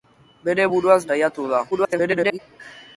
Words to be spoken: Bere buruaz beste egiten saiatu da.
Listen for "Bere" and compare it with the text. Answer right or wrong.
right